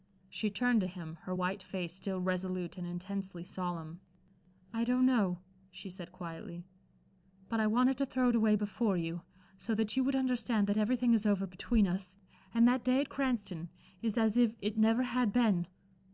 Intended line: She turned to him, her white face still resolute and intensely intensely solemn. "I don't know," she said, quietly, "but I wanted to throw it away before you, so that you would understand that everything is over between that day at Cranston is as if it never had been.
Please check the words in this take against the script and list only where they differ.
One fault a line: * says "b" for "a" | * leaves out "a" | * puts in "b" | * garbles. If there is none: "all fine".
* leaves out "intensely"
* puts in "us and"